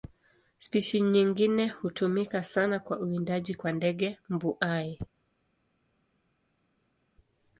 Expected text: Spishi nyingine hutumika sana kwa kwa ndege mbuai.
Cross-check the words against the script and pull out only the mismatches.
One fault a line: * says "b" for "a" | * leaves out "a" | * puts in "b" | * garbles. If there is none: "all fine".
* puts in "uwindaji"